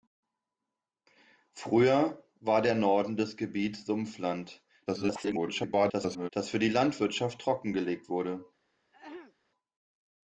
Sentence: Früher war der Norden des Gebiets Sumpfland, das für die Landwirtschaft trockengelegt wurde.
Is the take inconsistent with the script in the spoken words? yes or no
yes